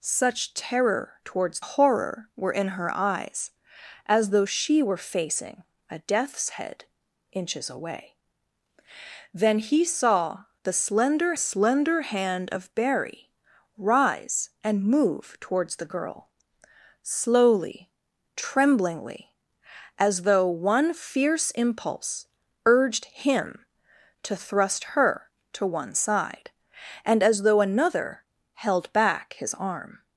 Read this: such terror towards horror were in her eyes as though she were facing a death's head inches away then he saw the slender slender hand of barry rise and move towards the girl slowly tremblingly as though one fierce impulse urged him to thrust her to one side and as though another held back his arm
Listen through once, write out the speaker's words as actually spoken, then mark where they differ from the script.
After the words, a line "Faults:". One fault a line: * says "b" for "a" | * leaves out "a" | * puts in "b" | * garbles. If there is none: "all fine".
such terror towards horror were in her eyes as though she were facing a death's head inches away then he saw the slender slender hand of barry rise and move towards the girl slowly tremblingly as though one fierce impulse urged him to thrust her to one side and as though another held back his arm
Faults:
all fine